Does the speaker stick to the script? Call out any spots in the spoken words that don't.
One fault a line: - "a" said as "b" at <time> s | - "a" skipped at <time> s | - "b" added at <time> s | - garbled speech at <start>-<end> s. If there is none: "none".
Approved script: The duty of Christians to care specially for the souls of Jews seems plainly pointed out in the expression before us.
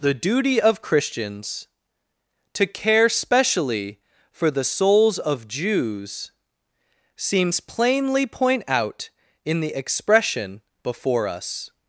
- "pointed" said as "point" at 8.3 s